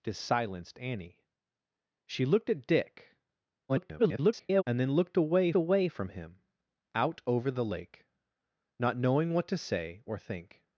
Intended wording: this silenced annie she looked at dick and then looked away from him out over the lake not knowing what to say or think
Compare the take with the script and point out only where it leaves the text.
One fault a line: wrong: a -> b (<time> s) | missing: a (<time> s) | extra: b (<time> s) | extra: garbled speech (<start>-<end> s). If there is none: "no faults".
extra: garbled speech (3.7-4.6 s)
extra: away (5.6 s)